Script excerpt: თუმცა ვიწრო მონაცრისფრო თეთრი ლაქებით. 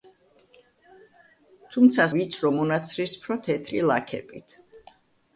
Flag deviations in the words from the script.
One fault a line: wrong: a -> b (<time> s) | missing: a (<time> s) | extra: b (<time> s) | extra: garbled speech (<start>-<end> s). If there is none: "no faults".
no faults